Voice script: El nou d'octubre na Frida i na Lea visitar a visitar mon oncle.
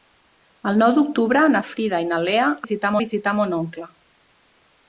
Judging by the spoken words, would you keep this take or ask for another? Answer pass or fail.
pass